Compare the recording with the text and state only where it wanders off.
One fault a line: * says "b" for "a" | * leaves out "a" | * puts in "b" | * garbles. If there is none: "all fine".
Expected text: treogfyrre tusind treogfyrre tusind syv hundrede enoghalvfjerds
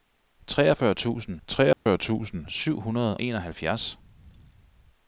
all fine